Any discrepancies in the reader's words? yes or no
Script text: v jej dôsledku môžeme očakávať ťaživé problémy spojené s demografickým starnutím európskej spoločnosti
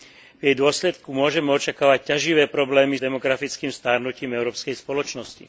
yes